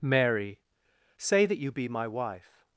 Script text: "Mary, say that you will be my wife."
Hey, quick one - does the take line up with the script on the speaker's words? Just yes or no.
no